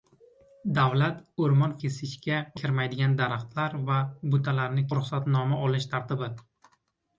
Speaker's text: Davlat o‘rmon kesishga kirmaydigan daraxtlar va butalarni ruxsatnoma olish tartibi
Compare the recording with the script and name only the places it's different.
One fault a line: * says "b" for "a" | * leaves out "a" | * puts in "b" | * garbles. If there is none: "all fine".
all fine